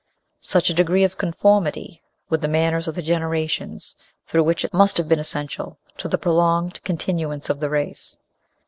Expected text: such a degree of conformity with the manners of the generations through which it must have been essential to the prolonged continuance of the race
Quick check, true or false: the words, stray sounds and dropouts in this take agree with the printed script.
true